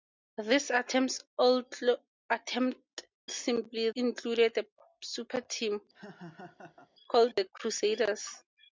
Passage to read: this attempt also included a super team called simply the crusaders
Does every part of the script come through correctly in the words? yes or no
no